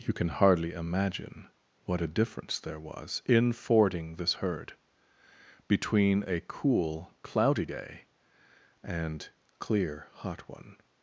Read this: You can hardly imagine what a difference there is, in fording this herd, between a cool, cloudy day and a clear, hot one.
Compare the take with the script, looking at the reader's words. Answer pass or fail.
fail